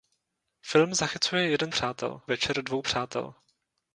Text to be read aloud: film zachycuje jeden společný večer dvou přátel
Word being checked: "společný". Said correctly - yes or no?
no